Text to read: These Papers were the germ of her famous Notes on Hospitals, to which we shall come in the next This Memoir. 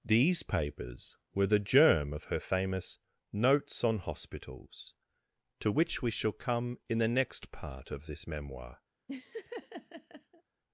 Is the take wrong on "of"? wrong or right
right